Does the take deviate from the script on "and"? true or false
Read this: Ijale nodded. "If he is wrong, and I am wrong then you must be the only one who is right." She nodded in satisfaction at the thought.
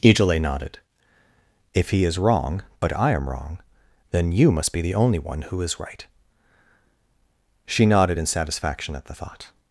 true